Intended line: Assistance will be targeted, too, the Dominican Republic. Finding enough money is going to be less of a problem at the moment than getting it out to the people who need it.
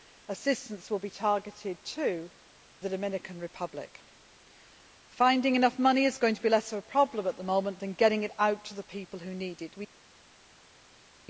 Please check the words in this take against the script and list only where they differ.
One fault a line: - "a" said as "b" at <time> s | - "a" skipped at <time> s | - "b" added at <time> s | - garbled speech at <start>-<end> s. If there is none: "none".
none